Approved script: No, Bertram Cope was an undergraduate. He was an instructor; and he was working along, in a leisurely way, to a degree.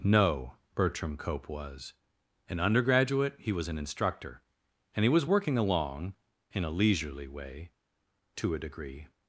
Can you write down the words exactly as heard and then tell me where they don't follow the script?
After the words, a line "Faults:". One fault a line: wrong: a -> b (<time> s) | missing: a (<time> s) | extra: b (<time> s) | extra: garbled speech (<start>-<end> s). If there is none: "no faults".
No, Bertram Cope was an undergraduate. He was an instructor; and he was working along, in a leisurely way, to a degree.
Faults:
no faults